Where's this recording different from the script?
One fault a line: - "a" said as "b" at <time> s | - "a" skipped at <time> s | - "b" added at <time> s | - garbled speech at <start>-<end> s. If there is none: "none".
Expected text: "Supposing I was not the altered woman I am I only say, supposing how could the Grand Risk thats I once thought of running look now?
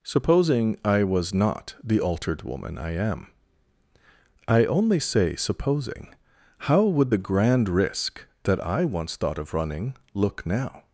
- "could" said as "would" at 6.8 s
- "thats" said as "that" at 8.4 s